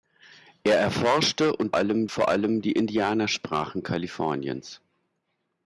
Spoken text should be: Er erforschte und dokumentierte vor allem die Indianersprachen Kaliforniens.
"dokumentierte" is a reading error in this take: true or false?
true